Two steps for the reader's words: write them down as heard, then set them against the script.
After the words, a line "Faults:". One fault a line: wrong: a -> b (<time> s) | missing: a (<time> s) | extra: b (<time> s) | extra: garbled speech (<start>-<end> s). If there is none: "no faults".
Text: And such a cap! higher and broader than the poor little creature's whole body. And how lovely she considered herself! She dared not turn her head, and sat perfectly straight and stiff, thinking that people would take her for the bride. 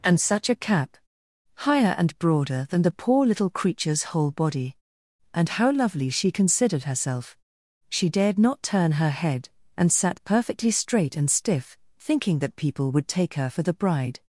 And such a cap! higher and broader than the poor little creature's whole body. And how lovely she considered herself! She dared not turn her head, and sat perfectly straight and stiff, thinking that people would take her for the bride.
Faults:
no faults